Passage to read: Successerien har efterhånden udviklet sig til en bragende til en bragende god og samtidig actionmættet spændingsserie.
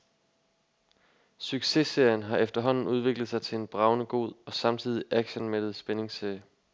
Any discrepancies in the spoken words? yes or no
yes